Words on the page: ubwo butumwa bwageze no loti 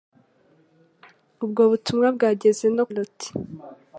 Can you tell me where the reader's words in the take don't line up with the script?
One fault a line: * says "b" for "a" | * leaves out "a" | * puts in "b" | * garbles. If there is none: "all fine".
all fine